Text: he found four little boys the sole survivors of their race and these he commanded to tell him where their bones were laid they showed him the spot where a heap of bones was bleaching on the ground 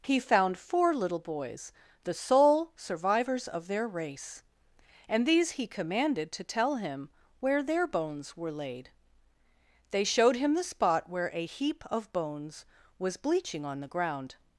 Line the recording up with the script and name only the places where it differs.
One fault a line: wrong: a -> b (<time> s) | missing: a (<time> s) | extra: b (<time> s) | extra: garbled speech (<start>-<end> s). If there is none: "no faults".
no faults